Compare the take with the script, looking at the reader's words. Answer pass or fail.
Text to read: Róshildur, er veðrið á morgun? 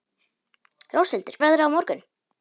pass